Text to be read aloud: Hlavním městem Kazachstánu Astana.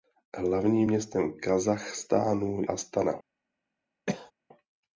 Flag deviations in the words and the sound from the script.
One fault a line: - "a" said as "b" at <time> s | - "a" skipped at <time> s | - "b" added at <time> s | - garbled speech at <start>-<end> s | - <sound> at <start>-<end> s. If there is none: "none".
- cough at 4.1-4.3 s